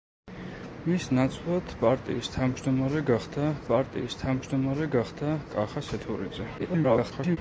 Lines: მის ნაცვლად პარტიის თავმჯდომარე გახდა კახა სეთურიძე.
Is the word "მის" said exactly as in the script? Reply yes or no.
yes